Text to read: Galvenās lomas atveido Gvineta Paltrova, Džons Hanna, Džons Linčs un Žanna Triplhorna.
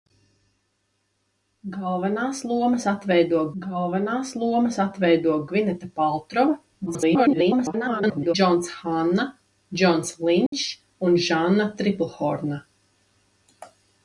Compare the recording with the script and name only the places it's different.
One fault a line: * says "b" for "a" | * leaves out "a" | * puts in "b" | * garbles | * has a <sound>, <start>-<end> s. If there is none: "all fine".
* puts in "galvenās lomas atveido"
* garbles
* has a dropout, 10.5-10.5 s